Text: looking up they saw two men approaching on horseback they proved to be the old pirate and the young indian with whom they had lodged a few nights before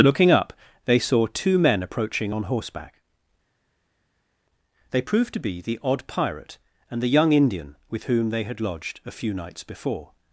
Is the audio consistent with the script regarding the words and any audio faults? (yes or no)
no